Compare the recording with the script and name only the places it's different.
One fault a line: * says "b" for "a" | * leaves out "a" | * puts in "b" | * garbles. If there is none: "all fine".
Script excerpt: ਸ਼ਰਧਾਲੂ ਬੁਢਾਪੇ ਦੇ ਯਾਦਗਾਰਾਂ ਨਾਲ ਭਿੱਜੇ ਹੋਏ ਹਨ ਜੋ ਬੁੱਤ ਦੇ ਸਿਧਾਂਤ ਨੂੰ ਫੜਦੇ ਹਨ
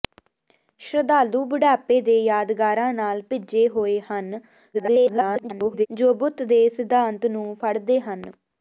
* garbles